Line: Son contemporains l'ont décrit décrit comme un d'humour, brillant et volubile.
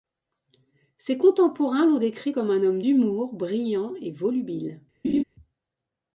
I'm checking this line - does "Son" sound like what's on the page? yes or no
no